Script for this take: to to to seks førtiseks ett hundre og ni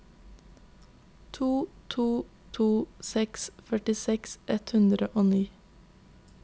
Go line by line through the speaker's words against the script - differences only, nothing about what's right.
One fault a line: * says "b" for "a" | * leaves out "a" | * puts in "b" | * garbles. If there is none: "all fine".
all fine